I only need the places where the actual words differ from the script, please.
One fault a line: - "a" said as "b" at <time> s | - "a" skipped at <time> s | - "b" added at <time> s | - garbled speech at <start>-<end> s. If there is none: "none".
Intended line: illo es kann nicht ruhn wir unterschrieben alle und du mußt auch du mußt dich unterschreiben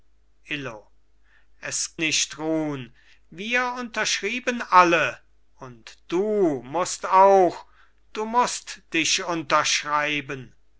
- "kann" skipped at 2.0 s